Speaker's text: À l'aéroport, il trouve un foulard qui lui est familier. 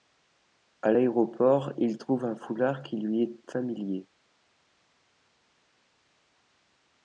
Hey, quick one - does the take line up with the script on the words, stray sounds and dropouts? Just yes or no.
yes